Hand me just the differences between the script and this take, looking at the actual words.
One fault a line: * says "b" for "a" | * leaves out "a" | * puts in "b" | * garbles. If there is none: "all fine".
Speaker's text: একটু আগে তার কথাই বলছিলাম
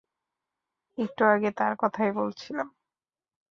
all fine